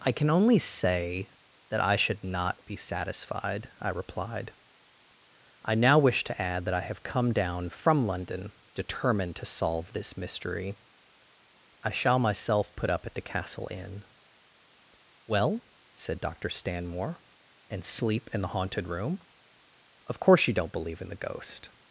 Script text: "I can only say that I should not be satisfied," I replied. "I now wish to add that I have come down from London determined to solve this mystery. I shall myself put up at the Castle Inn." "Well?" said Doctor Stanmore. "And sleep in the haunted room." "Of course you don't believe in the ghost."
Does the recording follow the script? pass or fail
pass